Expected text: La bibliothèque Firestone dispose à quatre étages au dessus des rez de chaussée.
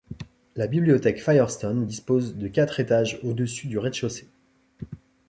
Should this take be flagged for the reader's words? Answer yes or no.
yes